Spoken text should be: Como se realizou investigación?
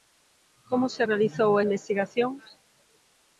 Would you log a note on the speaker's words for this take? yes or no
no